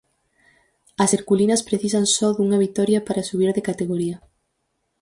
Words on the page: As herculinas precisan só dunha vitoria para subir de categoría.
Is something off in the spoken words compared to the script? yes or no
no